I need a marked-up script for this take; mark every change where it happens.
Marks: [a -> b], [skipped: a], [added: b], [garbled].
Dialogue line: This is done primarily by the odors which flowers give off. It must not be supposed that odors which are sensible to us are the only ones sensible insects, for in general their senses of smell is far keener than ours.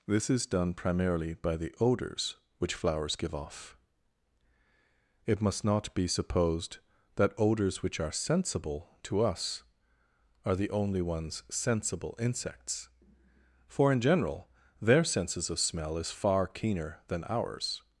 This is done primarily by the odors which flowers give off. It must not be supposed that odors which are sensible to us are the only ones sensible insects, for in general their senses of smell is far keener than ours.